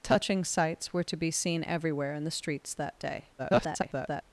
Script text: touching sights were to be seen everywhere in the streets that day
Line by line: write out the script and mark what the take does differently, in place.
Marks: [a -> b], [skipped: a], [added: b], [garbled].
touching sights were to be seen everywhere in the streets that day [garbled]